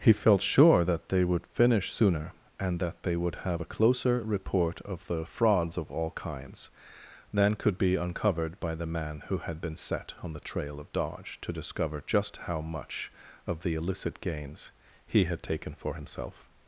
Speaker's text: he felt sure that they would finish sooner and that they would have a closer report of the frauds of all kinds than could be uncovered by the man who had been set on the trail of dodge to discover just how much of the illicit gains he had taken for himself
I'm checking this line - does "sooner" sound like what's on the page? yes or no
yes